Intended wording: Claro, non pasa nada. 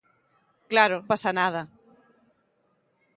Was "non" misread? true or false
true